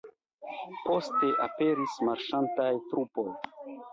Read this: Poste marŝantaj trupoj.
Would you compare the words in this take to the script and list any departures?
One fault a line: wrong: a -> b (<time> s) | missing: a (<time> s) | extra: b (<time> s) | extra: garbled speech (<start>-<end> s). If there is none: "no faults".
extra: aperis (1.5 s)